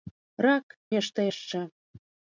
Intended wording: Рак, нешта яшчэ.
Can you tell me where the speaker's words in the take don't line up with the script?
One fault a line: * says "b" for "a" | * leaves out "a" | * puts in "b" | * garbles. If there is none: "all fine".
all fine